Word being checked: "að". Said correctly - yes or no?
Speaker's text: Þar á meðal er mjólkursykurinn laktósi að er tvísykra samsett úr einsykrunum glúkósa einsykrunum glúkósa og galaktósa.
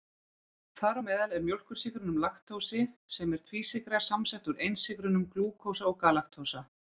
no